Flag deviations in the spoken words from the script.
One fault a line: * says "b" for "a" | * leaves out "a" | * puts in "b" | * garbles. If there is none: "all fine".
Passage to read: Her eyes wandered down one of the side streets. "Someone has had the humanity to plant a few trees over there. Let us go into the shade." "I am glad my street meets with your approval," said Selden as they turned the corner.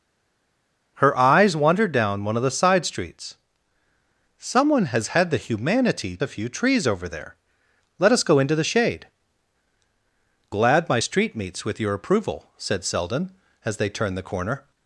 * leaves out "to plant"
* leaves out "I am"